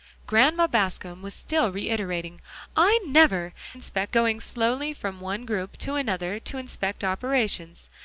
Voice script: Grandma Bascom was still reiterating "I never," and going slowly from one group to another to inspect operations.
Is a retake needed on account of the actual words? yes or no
yes